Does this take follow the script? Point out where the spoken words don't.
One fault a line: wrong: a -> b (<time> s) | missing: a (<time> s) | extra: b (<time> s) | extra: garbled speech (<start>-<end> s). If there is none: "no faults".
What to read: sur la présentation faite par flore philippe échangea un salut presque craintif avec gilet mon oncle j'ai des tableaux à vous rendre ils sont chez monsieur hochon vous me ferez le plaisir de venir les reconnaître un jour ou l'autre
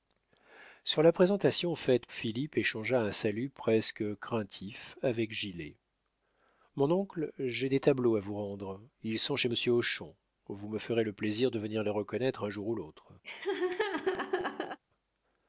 missing: par flore (2.1 s)